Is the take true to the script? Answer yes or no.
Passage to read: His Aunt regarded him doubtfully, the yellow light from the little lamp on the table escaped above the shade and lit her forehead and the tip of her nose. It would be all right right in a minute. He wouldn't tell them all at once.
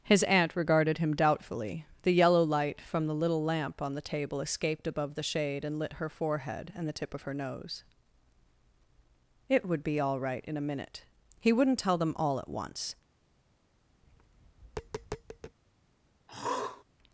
no